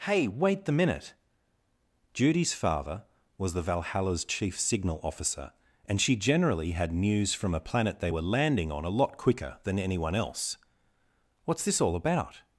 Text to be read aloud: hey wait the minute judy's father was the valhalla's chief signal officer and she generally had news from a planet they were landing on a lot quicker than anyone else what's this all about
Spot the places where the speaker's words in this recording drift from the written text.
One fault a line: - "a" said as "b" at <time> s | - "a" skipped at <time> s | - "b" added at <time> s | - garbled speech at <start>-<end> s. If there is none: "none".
none